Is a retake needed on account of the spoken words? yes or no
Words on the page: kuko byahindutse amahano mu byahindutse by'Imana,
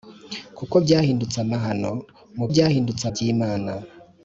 no